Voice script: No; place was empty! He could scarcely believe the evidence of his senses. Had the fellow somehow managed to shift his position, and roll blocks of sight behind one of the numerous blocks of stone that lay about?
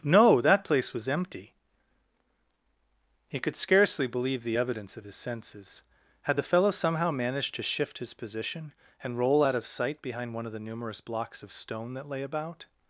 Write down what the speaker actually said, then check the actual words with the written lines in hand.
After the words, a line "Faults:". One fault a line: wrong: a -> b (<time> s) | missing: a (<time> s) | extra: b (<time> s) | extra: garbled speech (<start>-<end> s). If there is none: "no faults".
No; that place was empty! He could scarcely believe the evidence of his senses. Had the fellow somehow managed to shift his position, and roll out of sight behind one of the numerous blocks of stone that lay about?
Faults:
extra: that (0.4 s)
wrong: blocks -> out (9.4 s)